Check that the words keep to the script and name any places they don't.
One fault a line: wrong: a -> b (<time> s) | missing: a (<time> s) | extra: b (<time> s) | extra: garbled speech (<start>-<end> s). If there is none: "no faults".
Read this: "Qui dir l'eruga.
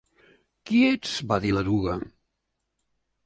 extra: ets va (0.9 s)